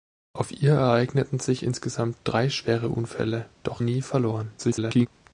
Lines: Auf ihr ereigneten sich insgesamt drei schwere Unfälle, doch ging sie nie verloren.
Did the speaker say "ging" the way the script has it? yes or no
no